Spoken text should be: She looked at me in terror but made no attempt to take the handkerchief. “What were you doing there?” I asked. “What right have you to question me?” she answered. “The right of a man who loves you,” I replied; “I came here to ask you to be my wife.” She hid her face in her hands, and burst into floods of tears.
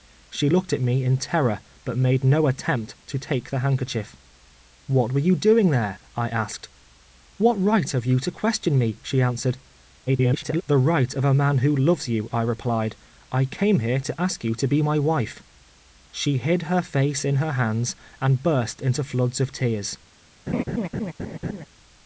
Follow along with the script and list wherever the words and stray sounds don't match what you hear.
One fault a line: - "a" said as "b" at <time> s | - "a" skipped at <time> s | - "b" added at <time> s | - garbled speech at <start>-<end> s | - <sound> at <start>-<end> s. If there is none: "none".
- garbled speech at 10.1-10.6 s
- laugh at 20.5-21.7 s